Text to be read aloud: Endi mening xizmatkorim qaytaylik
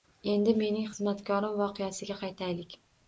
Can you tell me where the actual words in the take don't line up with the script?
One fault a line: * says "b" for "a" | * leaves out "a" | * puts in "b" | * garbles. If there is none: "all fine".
* puts in "voqeasiga"